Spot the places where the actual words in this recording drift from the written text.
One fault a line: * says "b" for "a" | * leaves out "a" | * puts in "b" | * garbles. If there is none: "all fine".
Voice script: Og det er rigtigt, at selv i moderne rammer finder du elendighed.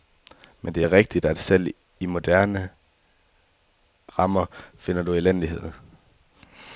* says "Men" for "Og"